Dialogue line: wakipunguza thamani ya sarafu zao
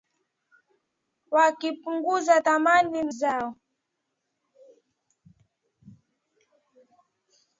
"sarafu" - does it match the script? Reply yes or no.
no